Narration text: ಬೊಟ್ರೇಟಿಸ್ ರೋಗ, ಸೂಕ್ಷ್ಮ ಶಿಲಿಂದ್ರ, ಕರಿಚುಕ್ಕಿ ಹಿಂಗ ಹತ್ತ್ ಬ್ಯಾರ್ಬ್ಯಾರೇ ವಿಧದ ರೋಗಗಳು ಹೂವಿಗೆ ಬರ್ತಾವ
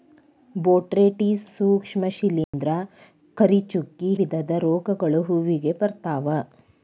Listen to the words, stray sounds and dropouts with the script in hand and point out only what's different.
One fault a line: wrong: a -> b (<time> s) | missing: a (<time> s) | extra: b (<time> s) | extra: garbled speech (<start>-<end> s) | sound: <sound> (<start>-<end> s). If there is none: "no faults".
missing: ರೋಗ (1.4 s)
sound: dropout (2.4-2.5 s)
missing: ಹಿಂಗ ಹತ್ತ್ ಬ್ಯಾರ್ಬ್ಯಾರೇ (4.1 s)